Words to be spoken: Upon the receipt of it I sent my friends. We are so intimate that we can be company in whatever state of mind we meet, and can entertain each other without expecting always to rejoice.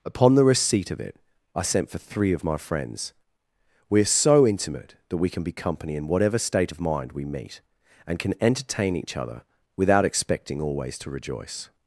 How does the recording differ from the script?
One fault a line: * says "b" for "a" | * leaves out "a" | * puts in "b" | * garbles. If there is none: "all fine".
* puts in "for three of"